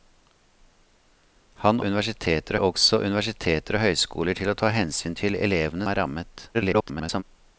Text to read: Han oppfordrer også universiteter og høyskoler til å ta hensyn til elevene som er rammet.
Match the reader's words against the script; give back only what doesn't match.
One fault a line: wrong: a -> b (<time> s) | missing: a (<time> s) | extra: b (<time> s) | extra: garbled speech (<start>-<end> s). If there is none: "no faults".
wrong: oppfordrer -> universiteter (1.9 s)
missing: som (5.9 s)
extra: garbled speech (6.5-7.2 s)